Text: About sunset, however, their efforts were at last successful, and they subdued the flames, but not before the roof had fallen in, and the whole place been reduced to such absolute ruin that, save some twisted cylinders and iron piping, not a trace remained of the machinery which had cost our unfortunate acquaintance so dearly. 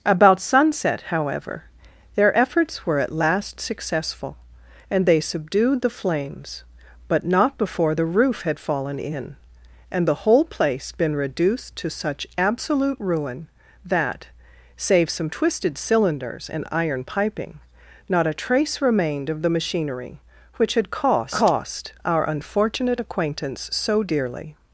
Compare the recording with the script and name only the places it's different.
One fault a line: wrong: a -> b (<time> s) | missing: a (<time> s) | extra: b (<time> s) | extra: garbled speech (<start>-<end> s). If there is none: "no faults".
extra: cost (21.3 s)